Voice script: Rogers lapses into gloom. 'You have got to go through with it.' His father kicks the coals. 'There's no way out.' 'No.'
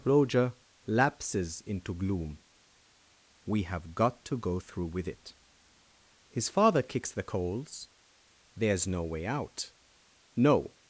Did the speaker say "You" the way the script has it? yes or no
no